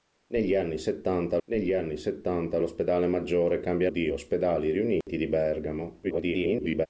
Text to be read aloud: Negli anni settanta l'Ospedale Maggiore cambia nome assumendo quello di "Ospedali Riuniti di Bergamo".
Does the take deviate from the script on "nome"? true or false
true